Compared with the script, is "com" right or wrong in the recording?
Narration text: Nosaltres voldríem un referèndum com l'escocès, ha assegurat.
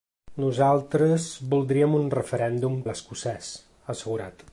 wrong